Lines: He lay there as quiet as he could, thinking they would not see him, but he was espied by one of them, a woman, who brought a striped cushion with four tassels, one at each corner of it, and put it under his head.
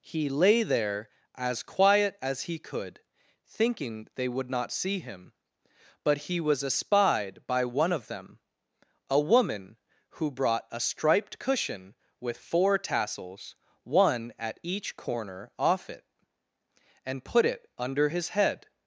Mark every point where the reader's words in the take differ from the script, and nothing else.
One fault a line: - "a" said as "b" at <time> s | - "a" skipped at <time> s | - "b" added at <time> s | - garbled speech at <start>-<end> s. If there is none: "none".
- "of" said as "off" at 15.6 s